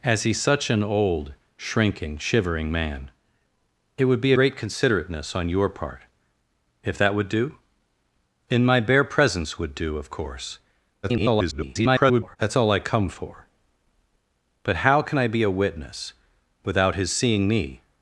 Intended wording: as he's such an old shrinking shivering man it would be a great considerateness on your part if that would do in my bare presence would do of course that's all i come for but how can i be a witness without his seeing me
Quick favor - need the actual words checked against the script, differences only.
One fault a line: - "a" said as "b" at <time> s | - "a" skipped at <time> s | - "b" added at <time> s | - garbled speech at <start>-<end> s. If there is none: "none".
- "a" skipped at 4.3 s
- garbled speech at 11.0-12.4 s